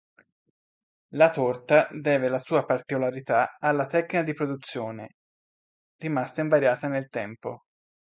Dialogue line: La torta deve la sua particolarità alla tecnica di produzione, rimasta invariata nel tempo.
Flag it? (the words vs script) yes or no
no